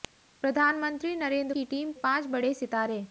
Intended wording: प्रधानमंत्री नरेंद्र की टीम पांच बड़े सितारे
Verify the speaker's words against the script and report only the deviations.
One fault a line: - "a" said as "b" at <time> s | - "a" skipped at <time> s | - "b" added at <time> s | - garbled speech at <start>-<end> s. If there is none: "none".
none